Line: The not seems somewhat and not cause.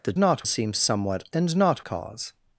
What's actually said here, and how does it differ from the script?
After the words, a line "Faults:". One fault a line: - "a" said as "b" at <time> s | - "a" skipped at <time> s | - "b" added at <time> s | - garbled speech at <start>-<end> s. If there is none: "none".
The not seems somewhat and not cause.
Faults:
none